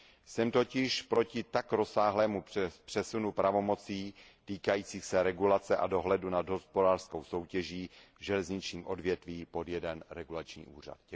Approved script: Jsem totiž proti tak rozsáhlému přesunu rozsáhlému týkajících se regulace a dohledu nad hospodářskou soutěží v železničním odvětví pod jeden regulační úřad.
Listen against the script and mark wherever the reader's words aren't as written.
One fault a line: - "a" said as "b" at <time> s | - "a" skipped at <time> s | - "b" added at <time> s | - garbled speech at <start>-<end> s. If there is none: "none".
- "rozsáhlému" said as "pravomocí" at 3.3 s